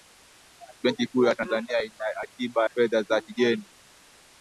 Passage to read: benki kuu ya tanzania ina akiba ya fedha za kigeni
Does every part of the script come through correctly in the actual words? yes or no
no